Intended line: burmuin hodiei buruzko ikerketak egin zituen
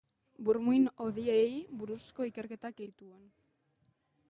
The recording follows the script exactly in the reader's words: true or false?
false